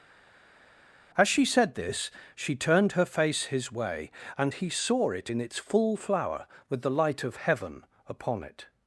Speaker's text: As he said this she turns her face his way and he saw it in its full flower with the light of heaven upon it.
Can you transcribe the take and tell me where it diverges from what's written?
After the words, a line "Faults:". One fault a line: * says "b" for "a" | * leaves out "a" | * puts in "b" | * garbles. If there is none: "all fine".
As she said this she turned her face his way and he saw it in its full flower with the light of heaven upon it.
Faults:
* says "she" for "he"
* says "turned" for "turns"